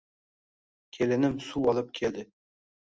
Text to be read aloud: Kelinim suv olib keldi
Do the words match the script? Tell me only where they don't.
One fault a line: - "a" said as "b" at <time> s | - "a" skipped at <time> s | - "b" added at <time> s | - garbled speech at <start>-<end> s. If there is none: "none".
none